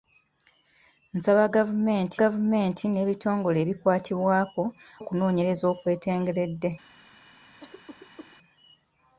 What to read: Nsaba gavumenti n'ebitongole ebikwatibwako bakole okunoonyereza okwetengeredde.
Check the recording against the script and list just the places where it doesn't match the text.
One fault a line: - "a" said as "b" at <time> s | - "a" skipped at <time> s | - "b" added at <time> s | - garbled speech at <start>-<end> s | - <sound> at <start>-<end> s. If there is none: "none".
- "gavumenti" added at 2.2 s
- "bakole" skipped at 4.6 s
- cough at 7.6-8.4 s